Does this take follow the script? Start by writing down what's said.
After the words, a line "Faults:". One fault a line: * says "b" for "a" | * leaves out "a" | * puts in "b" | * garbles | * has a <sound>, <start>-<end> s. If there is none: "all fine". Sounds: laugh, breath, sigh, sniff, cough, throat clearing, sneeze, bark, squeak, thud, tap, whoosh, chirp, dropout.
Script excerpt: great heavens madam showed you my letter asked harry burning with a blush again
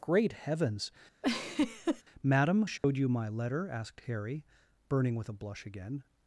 great heavens madam showed you my letter asked harry burning with a blush again
Faults:
* has a laugh, 1.2-2.0 s
* has a dropout, 2.8-2.8 s